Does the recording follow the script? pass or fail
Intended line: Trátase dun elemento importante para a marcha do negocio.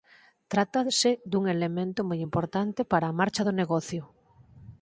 fail